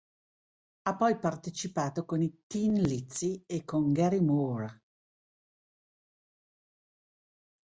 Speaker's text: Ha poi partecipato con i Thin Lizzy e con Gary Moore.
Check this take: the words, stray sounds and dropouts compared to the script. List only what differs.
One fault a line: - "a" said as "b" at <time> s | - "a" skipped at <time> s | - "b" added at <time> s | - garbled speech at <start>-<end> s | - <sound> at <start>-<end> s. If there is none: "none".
none